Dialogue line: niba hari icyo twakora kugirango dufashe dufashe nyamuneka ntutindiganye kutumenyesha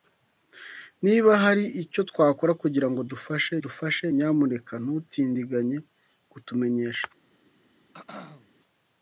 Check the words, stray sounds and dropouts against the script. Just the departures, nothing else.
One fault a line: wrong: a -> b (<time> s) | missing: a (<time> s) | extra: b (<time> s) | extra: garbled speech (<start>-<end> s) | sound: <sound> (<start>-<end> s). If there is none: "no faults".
sound: throat clearing (7.9-8.5 s)